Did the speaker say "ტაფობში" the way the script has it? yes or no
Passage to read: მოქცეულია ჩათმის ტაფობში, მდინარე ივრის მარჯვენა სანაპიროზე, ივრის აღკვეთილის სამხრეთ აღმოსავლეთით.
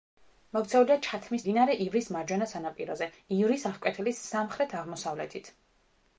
no